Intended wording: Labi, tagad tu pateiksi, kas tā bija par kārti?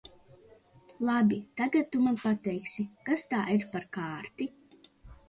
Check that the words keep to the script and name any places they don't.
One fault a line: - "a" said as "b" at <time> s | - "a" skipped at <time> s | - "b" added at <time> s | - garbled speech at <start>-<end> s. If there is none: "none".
- "man" added at 2.0 s
- "bija" said as "ir" at 3.5 s